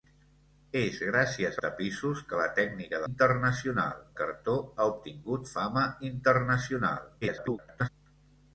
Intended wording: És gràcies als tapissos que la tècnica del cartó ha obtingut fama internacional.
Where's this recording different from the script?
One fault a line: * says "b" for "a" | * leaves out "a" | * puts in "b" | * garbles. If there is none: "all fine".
* leaves out "als"
* says "internacional" for "del"
* garbles